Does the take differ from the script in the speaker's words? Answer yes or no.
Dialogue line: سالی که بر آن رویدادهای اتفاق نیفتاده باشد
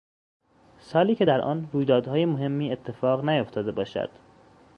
yes